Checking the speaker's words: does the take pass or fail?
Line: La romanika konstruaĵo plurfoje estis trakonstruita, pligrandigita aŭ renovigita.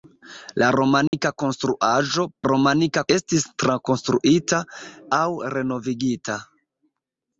fail